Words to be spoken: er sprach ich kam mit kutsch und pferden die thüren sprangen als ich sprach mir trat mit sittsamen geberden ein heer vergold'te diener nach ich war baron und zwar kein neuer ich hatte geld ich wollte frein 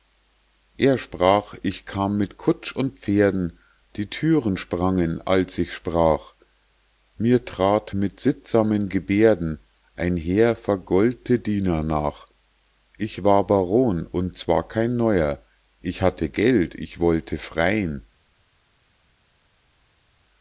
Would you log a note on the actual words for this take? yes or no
no